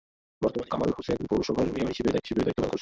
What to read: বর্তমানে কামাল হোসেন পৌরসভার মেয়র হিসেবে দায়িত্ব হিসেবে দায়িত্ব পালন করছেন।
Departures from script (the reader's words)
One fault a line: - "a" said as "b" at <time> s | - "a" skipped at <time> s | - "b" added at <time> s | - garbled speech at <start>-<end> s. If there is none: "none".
none